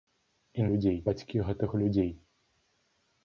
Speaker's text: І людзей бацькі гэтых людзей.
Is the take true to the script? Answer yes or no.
yes